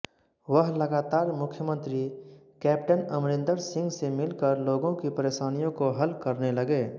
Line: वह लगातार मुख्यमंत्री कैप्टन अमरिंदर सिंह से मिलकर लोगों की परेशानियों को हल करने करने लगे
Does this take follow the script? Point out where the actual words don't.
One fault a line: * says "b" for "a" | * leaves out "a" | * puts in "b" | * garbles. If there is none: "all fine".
* leaves out "करने"